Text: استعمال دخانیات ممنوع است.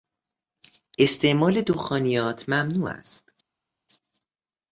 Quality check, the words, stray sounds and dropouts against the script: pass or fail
pass